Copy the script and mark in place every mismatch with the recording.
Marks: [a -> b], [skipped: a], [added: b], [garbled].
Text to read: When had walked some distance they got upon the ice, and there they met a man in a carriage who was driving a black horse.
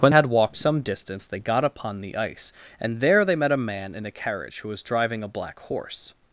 When had walked some distance they got upon the ice, and there they met a man in a carriage who was driving a black horse.